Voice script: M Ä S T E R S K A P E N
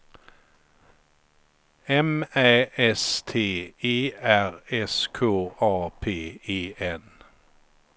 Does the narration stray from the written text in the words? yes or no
no